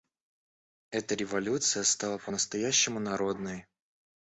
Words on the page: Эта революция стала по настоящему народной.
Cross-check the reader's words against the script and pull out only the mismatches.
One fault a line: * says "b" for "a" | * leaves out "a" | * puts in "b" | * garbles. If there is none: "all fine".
all fine